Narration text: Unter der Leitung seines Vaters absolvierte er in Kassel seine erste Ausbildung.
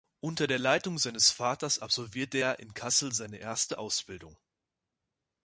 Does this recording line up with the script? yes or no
yes